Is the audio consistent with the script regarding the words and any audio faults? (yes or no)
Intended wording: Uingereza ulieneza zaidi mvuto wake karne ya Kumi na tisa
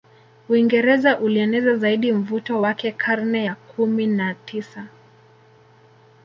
yes